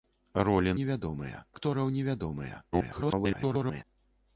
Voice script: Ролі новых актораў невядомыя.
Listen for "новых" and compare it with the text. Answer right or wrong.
wrong